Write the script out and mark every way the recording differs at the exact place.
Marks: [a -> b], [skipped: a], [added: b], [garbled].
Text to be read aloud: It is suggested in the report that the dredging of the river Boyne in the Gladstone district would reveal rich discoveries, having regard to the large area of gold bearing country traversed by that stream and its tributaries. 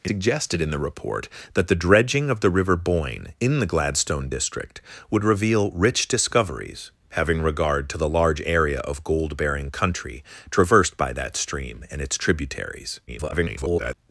It [skipped: is] suggested in the report that the dredging of the river Boyne in the Gladstone district would reveal rich discoveries, having regard to the large area of gold bearing country traversed by that stream and its tributaries. [garbled]